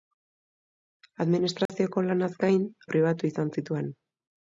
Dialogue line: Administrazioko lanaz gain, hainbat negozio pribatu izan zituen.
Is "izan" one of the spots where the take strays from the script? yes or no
no